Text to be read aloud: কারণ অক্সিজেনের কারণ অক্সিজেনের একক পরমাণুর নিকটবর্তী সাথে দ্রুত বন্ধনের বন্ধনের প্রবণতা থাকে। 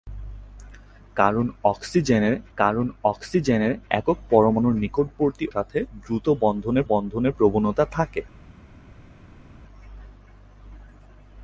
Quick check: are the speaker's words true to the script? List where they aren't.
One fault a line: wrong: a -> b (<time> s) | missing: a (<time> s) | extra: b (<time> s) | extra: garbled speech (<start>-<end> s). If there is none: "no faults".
no faults